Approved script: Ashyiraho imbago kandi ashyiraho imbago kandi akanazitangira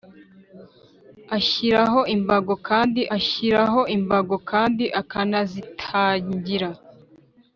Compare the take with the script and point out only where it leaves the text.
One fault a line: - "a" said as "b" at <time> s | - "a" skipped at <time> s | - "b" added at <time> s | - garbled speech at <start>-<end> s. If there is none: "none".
none